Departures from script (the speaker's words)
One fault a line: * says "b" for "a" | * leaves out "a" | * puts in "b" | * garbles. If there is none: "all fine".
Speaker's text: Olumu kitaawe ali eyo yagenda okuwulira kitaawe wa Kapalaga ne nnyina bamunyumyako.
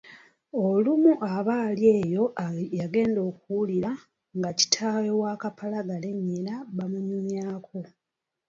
* says "aba" for "kitaawe"
* puts in "nga"